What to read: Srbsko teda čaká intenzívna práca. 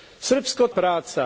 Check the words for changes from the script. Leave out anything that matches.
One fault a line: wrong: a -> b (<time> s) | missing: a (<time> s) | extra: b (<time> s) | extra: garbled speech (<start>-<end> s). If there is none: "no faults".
missing: teda čaká intenzívna (0.7 s)